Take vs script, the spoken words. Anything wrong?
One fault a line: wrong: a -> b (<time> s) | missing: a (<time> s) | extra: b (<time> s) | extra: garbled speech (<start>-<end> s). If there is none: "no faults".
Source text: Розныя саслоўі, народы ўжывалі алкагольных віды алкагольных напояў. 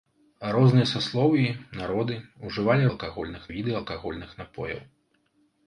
no faults